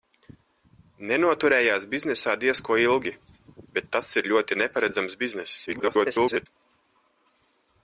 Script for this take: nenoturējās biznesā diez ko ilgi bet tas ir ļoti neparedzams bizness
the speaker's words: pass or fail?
fail